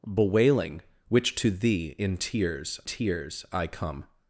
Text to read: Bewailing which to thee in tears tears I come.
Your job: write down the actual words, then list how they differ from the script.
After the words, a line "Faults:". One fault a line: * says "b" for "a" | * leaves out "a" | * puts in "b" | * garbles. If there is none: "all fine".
Bewailing which to thee in tears tears I come.
Faults:
all fine